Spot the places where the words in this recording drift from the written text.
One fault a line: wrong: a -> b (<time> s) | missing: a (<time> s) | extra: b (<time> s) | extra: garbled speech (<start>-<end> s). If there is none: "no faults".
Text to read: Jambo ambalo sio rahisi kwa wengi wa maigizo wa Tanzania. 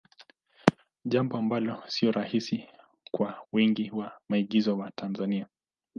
no faults